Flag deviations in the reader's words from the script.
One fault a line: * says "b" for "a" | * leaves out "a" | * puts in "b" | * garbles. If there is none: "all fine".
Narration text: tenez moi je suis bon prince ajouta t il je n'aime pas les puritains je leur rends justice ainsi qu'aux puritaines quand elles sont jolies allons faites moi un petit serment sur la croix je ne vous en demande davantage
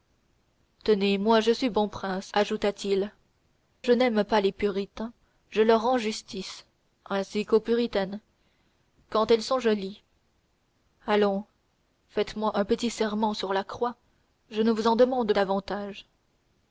all fine